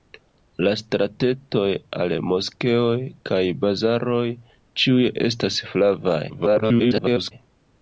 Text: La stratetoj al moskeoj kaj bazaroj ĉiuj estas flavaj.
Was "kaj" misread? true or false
false